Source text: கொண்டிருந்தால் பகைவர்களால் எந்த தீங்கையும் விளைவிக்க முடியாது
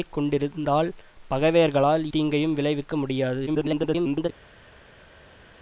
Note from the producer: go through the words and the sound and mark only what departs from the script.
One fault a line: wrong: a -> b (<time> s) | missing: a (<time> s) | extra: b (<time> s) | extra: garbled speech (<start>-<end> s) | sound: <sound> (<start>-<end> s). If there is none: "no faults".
missing: எந்த (2.0 s)
extra: garbled speech (3.5-4.3 s)